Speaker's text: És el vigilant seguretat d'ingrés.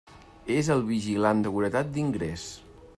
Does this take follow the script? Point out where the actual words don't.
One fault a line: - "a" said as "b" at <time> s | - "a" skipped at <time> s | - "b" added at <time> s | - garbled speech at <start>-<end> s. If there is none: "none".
none